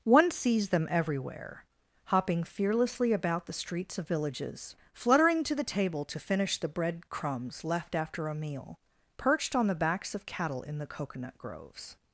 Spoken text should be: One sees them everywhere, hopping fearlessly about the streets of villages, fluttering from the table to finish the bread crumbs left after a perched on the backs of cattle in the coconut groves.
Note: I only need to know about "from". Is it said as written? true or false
false